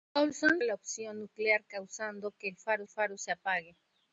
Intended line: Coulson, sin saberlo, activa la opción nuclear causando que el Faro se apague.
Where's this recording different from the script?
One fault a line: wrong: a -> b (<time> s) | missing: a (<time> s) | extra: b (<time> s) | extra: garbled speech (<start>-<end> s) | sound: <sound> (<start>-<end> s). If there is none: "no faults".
missing: sin saberlo activa (0.6 s)
extra: Faro (2.9 s)